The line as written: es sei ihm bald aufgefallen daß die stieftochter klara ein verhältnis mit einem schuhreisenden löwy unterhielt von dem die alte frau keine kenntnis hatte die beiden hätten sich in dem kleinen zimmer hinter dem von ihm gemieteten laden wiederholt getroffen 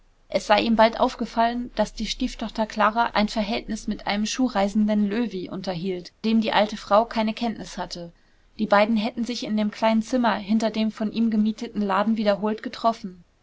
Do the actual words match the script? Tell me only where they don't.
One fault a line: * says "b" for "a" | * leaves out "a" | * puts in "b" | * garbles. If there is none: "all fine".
* leaves out "von"